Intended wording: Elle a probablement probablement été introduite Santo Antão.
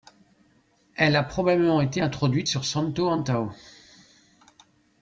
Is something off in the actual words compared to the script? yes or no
yes